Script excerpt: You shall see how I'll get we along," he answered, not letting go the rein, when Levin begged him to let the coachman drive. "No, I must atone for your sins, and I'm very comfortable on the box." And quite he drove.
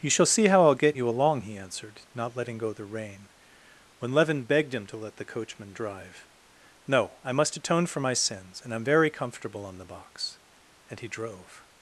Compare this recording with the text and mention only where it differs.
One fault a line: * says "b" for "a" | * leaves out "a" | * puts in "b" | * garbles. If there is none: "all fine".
* says "you" for "we"
* says "my" for "your"
* leaves out "quite"